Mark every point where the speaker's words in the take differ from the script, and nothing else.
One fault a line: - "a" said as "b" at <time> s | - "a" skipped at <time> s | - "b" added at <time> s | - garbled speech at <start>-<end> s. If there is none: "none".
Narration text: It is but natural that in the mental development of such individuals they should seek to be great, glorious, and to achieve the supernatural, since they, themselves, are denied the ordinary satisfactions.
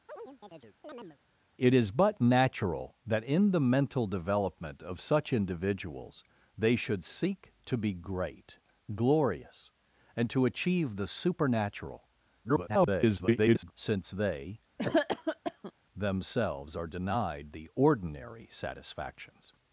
- garbled speech at 12.4-13.7 s